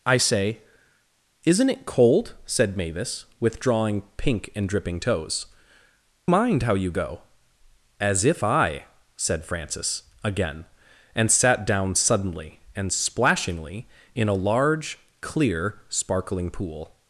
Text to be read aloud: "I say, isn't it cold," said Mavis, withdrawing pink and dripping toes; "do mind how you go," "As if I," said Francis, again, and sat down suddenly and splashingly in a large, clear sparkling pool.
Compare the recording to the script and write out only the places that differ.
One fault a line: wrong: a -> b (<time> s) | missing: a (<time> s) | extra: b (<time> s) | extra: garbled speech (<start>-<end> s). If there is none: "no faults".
missing: do (5.5 s)